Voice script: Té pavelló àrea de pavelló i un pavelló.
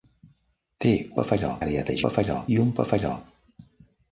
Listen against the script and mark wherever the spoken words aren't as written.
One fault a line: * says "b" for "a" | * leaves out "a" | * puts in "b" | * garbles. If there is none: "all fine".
all fine